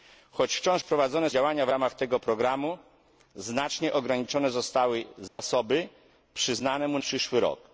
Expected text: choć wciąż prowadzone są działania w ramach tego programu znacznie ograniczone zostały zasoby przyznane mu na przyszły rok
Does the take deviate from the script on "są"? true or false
true